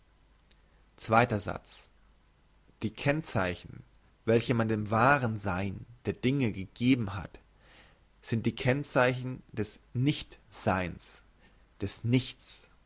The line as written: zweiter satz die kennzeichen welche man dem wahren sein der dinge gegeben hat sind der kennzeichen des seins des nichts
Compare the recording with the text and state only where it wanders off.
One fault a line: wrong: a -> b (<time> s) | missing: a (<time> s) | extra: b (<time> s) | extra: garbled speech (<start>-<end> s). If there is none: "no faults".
wrong: der -> die (8.4 s)
extra: nicht (9.9 s)